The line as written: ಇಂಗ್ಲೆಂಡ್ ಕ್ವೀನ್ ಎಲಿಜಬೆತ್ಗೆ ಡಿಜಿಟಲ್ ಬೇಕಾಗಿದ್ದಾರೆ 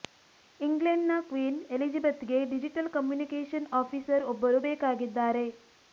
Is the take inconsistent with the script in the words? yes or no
yes